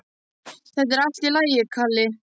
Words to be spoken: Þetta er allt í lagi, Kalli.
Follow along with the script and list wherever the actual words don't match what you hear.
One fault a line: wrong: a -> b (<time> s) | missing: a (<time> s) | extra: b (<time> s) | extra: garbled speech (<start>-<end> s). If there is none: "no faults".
no faults